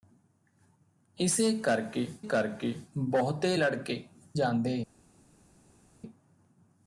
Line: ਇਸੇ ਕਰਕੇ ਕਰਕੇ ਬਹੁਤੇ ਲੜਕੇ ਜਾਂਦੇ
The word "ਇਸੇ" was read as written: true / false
true